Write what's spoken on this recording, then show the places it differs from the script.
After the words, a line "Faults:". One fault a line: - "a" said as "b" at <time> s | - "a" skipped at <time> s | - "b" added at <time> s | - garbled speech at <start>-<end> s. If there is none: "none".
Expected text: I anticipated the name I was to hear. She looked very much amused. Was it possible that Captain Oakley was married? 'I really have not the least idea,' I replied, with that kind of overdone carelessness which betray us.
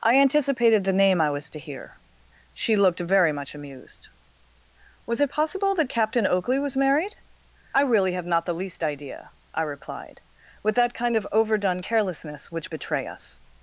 I anticipated the name I was to hear. She looked very much amused. Was it possible that Captain Oakley was married? 'I really have not the least idea,' I replied, with that kind of overdone carelessness which betray us.
Faults:
none